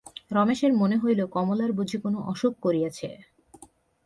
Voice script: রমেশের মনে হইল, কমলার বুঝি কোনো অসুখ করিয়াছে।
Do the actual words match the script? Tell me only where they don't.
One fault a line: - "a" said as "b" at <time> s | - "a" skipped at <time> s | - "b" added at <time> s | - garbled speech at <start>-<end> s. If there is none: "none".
none